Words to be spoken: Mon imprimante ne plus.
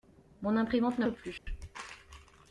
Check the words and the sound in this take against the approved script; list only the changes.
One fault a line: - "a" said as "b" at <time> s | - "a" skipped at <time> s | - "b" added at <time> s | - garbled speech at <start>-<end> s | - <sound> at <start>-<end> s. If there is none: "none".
- dropout at 1.4-1.5 s